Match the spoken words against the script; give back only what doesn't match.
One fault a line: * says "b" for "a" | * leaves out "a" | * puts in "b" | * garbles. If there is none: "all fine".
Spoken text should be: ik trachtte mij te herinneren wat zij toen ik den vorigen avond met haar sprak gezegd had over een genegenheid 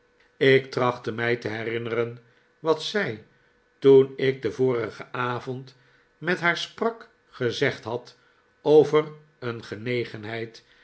all fine